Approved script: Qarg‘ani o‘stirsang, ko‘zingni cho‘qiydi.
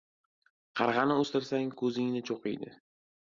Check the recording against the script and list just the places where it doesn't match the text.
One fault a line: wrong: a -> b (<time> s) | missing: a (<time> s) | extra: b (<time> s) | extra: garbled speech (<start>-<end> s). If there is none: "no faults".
no faults